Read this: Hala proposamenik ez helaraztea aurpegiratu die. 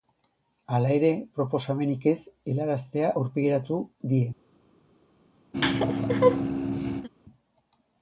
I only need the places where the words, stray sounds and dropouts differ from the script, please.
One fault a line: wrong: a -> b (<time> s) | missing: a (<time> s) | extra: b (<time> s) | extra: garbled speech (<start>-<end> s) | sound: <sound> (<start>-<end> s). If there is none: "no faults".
extra: ere (0.9 s)
sound: laugh (5.5-7.1 s)